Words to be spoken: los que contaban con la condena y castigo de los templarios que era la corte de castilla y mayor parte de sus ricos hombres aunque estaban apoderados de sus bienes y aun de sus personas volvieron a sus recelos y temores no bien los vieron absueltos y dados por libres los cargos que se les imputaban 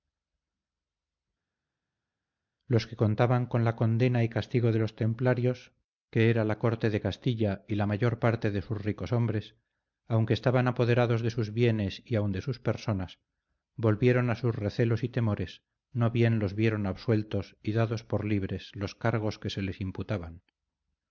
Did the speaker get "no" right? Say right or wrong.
right